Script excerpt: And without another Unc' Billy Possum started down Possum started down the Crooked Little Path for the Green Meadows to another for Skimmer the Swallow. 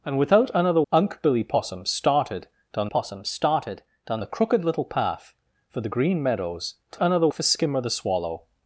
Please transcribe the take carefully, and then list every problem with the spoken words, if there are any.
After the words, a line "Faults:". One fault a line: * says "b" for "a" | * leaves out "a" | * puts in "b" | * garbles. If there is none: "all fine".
And without another Unc' Billy Possum started down Possum started down the Crooked Little Path for the Green Meadows to another for Skimmer the Swallow.
Faults:
all fine